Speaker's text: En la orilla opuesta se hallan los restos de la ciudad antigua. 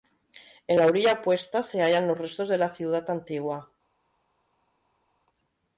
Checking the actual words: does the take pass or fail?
pass